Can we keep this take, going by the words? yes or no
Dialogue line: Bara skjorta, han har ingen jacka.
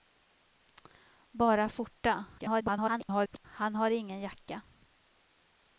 no